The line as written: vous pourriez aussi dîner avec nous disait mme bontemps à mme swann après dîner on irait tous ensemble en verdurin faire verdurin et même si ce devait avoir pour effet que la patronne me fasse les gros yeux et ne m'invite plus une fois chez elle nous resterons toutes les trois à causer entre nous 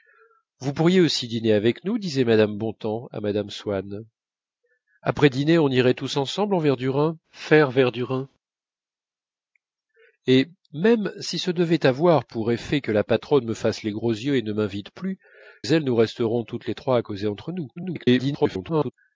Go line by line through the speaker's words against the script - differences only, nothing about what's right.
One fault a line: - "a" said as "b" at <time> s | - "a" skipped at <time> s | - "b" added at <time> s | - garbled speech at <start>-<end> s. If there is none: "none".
- "une fois chez" skipped at 15.2 s
- garbled speech at 17.8-18.9 s